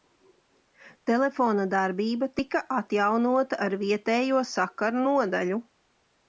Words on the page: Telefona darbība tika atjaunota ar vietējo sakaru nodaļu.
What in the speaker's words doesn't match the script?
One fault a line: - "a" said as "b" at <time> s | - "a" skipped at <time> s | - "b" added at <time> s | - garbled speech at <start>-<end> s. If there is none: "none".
none